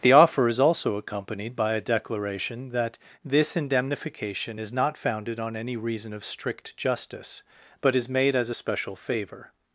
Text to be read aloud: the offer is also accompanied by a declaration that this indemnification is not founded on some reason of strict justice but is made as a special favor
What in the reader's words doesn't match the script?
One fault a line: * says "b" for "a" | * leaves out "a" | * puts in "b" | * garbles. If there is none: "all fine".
* says "any" for "some"